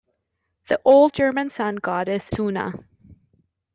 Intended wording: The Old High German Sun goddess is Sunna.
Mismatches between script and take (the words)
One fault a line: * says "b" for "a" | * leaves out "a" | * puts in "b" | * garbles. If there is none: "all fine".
* leaves out "High"
* leaves out "is"